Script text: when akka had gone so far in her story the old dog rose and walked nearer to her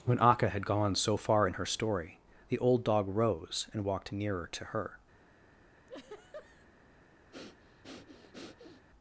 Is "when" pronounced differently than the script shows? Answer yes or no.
no